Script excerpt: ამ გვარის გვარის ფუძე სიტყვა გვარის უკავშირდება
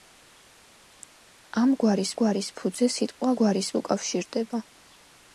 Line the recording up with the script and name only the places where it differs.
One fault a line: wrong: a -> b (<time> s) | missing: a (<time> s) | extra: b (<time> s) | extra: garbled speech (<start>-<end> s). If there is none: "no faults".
no faults